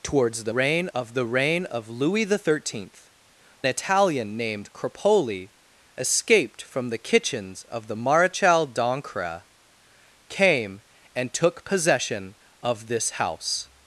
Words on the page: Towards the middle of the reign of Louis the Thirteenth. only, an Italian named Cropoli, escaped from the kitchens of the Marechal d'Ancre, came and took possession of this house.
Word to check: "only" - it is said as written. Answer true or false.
false